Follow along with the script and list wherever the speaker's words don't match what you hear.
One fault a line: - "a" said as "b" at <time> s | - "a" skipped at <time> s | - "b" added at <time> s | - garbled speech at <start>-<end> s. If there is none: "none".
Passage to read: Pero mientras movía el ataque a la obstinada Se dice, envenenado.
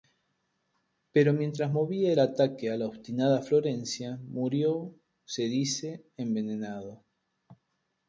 - "Florencia murió" added at 3.4 s